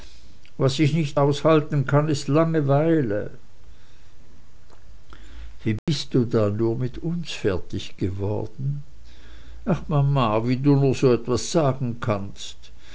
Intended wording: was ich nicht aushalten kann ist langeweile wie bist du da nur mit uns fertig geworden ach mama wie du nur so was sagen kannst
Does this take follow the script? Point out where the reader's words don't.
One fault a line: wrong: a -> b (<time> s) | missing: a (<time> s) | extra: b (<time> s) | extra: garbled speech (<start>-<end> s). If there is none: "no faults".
no faults